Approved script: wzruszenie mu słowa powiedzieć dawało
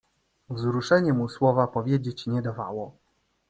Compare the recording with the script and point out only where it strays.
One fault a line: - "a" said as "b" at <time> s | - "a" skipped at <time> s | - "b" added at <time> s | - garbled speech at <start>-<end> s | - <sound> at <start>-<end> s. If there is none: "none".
- "nie" added at 2.3 s